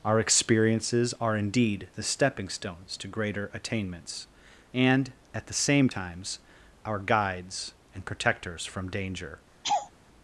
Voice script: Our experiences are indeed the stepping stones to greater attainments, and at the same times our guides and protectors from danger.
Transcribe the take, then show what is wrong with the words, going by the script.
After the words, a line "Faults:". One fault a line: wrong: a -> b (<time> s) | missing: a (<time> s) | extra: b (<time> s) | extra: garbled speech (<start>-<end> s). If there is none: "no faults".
Our experiences are indeed the stepping stones to greater attainments, and at the same times our guides and protectors from danger.
Faults:
no faults